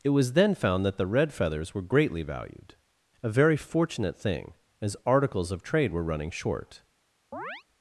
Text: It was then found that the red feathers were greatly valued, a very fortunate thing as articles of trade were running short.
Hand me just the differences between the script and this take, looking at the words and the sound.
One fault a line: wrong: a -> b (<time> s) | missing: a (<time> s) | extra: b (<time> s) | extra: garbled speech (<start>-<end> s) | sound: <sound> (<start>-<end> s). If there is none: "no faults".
sound: chirp (7.3-7.6 s)